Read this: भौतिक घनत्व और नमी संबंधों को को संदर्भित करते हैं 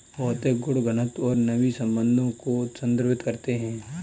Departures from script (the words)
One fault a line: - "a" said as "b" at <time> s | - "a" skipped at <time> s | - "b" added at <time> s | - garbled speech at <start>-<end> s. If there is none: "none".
- "गुण" added at 0.6 s
- "को" skipped at 2.7 s